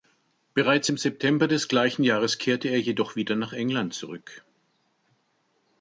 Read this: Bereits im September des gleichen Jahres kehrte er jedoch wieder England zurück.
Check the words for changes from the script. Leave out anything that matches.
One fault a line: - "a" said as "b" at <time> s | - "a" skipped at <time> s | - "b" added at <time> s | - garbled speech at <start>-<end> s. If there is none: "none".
- "nach" added at 3.4 s